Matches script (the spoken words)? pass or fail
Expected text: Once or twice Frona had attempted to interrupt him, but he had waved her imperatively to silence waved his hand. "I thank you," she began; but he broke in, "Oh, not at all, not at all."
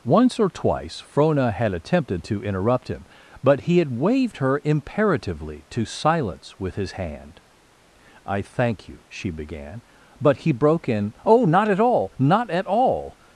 fail